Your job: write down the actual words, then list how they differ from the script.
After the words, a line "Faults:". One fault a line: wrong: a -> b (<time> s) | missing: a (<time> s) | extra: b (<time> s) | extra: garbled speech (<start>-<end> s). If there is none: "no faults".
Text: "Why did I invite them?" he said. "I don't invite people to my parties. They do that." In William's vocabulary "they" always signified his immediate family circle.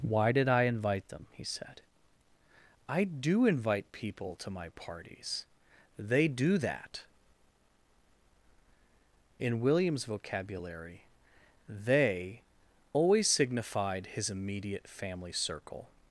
"Why did I invite them?" he said. "I do invite people to my parties. They do that." In William's vocabulary "they" always signified his immediate family circle.
Faults:
wrong: don't -> do (3.0 s)